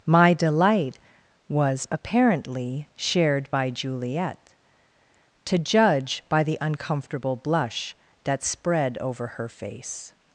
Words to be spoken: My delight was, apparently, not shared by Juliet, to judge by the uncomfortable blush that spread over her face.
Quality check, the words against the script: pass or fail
fail